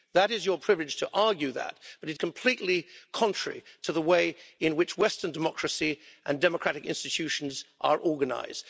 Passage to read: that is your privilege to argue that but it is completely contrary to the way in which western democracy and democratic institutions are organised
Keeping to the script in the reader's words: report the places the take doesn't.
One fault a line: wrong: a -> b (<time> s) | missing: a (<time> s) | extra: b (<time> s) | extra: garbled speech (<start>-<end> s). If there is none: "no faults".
missing: is (2.2 s)